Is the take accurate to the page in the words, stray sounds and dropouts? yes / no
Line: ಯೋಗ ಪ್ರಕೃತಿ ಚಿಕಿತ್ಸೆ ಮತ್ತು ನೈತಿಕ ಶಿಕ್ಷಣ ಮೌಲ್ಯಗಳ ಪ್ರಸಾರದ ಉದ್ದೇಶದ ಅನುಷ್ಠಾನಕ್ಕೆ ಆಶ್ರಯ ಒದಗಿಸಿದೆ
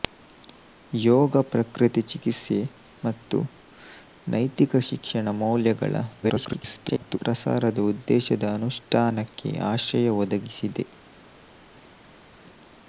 no